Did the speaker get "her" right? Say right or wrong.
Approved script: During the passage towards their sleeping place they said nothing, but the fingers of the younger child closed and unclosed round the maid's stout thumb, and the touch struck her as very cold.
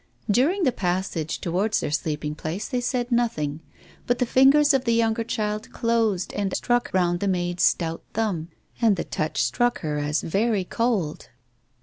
right